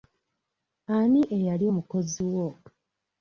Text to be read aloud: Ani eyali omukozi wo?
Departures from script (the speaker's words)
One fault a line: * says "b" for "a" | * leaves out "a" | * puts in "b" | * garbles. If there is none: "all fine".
all fine